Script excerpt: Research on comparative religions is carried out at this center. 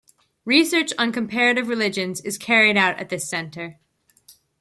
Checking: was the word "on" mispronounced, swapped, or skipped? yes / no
no